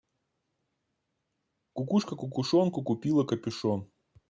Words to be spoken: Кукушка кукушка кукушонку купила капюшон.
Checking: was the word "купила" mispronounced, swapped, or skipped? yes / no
no